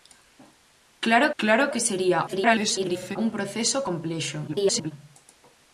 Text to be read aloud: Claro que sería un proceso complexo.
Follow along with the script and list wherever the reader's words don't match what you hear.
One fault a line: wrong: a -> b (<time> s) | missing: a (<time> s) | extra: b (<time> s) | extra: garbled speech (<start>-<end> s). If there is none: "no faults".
extra: claro (1.4 s)
extra: garbled speech (2.3-3.2 s)
extra: garbled speech (4.5-4.9 s)